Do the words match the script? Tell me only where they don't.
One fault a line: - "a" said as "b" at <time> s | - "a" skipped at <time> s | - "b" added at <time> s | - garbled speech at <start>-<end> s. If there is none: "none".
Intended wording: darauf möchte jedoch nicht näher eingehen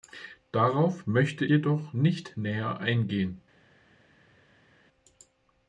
none